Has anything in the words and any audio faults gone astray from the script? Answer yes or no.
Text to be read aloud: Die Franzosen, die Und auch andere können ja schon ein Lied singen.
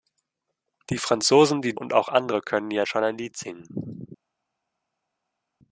no